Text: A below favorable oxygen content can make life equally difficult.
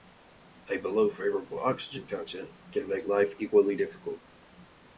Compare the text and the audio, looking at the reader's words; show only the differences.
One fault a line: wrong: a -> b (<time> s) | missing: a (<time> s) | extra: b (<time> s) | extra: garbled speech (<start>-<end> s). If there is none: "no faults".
no faults